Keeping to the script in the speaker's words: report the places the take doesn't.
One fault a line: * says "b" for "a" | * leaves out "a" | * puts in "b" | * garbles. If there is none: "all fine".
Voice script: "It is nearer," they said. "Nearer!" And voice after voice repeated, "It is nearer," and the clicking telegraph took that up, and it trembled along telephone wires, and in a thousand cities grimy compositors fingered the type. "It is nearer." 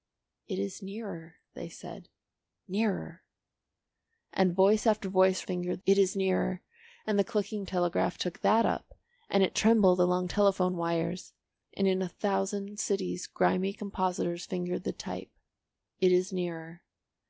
* says "fingered" for "repeated"